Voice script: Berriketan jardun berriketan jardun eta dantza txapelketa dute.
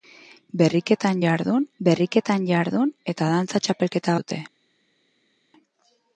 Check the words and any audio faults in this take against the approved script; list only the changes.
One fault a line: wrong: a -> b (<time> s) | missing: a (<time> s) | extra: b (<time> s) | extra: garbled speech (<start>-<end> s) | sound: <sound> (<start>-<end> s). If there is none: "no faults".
no faults